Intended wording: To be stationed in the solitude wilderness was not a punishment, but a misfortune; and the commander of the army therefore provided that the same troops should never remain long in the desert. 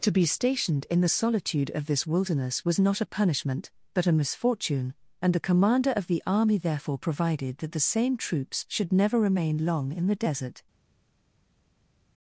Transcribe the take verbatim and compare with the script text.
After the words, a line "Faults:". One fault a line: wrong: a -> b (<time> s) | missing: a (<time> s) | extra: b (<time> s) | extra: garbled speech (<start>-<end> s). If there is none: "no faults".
To be stationed in the solitude of this wilderness was not a punishment, but a misfortune; and the commander of the army therefore provided that the same troops should never remain long in the desert.
Faults:
extra: of this (1.7 s)